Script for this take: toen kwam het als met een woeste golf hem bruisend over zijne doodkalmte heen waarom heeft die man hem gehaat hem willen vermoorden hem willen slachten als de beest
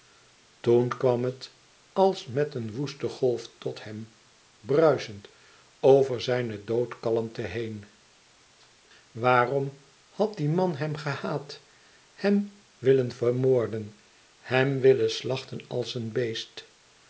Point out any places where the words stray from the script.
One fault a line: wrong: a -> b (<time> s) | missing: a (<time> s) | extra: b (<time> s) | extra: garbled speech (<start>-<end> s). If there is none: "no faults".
extra: tot (3.6 s)
wrong: heeft -> had (10.1 s)
wrong: de -> een (15.9 s)